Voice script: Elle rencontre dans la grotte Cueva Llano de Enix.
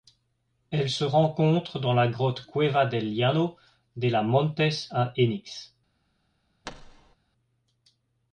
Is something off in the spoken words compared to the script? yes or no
yes